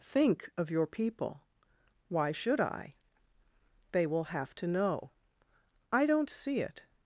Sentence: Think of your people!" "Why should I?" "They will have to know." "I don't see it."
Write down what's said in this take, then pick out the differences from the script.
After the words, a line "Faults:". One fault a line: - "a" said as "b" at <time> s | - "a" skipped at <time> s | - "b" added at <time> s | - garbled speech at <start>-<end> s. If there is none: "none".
Think of your people!" "Why should I?" "They will have to know." "I don't see it."
Faults:
none